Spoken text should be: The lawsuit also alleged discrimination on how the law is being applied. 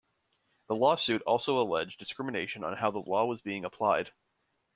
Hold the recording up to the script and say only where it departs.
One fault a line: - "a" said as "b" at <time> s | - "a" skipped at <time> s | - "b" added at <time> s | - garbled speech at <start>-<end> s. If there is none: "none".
- "is" said as "was" at 3.2 s